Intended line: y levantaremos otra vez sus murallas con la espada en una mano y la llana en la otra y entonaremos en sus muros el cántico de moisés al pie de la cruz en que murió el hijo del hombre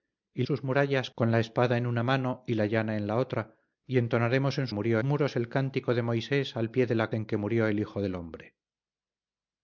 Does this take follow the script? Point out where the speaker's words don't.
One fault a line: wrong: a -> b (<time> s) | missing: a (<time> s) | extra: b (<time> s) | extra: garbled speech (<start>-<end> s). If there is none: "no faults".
missing: levantaremos otra vez (0.4 s)
wrong: sus -> murió (4.7 s)
missing: cruz (7.1 s)